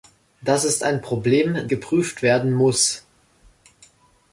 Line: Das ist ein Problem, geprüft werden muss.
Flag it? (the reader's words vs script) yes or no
no